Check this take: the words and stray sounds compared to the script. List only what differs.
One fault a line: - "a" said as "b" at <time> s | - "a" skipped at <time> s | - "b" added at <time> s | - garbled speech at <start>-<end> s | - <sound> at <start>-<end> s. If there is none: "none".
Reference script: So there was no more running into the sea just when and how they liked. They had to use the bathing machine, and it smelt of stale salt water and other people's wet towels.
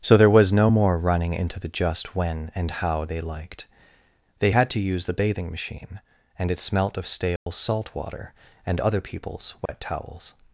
- "sea" skipped at 1.7 s
- dropout at 7.4-7.5 s
- dropout at 9.7-9.7 s